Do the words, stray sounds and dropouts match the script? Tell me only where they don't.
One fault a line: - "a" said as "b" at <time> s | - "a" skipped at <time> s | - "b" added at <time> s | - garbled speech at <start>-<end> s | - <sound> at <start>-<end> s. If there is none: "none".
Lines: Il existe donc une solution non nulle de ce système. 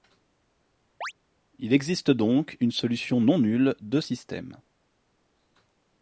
- chirp at 1.0-1.1 s
- "ce" skipped at 4.0 s